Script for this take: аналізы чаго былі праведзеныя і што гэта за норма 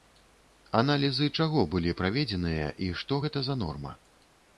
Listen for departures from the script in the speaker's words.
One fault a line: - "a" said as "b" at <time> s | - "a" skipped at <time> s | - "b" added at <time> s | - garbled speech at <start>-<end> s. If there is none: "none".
none